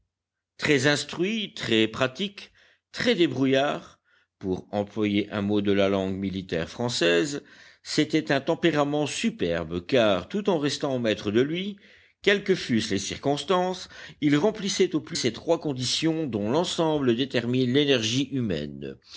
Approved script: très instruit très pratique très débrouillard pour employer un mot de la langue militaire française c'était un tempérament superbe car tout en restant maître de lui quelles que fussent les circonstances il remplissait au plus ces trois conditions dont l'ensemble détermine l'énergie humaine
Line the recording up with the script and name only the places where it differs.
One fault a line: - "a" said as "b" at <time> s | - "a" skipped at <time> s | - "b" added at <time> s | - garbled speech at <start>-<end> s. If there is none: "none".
none